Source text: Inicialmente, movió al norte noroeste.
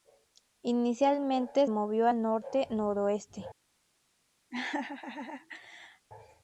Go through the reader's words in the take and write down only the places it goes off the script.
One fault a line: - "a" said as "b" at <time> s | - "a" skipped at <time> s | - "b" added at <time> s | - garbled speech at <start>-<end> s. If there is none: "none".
none